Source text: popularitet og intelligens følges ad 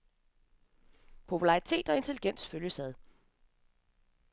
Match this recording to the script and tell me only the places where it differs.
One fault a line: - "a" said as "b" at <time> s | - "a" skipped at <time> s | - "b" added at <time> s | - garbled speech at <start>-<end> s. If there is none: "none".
none